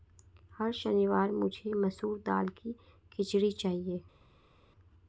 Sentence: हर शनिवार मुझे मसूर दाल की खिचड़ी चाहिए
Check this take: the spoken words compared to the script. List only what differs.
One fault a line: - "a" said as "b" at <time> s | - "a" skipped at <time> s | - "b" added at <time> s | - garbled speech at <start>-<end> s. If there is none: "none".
none